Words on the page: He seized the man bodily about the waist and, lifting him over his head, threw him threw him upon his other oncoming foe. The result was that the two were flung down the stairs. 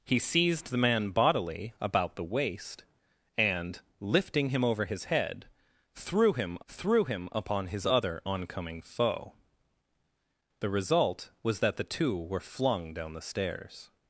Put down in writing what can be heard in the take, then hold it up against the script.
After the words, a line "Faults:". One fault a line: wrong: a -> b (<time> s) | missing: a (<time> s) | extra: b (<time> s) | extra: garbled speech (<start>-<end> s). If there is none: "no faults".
He seized the man bodily about the waist and, lifting him over his head, threw him threw him upon his other oncoming foe. The result was that the two were flung down the stairs.
Faults:
no faults